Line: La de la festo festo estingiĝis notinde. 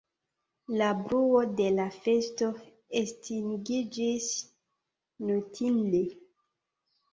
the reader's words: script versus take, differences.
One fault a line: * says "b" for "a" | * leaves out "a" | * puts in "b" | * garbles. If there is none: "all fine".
* puts in "bruo"
* leaves out "festo"